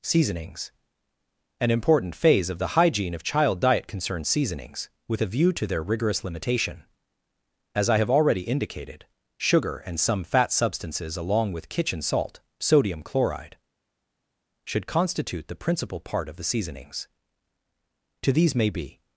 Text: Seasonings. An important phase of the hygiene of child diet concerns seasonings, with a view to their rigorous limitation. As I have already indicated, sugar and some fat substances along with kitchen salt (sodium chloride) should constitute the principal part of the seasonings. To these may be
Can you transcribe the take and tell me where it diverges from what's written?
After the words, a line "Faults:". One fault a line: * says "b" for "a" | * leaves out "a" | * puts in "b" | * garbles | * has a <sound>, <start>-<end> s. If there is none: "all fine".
Seasonings. An important phase of the hygiene of child diet concerns seasonings, with a view to their rigorous limitation. As I have already indicated, sugar and some fat substances along with kitchen salt (sodium chloride) should constitute the principal part of the seasonings. To these may be
Faults:
all fine